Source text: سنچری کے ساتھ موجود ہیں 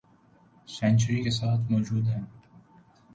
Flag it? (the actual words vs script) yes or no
no